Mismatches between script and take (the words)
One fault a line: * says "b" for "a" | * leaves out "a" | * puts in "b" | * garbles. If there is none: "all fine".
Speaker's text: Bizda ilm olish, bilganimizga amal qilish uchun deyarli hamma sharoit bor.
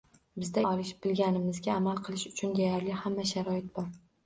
* leaves out "ilm"